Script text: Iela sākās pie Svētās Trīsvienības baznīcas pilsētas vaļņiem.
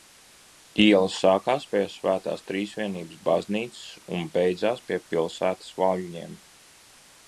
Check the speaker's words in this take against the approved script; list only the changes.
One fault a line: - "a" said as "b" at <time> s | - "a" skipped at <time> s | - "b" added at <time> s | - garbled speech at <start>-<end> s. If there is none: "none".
- "un beidzās pie" added at 4.2 s